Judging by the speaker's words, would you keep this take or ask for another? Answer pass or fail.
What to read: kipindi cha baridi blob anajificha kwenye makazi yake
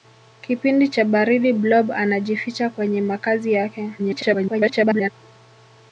fail